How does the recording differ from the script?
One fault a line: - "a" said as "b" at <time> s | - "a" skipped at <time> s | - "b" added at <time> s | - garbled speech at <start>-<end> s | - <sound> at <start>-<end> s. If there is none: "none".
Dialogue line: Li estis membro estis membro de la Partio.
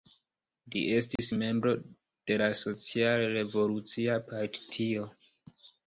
- dropout at 1.2-1.2 s
- "estis membro de la" said as "de la Social Revolucia" at 2.3 s